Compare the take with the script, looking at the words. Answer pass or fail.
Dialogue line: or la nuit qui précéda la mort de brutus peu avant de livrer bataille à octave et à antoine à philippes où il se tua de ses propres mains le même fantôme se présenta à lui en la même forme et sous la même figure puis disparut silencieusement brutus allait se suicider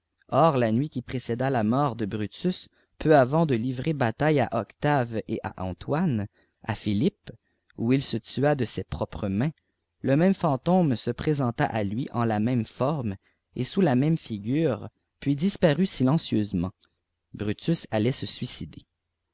pass